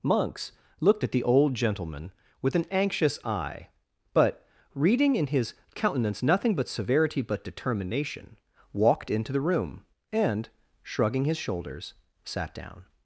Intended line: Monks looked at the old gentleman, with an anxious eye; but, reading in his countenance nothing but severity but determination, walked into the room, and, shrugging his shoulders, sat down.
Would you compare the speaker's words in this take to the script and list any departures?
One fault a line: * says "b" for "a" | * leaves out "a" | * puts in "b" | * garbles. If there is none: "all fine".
all fine